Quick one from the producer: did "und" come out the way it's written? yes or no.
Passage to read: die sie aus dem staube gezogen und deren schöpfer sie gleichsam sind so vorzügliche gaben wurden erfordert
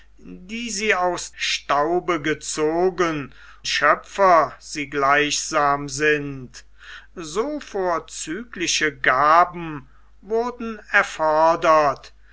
no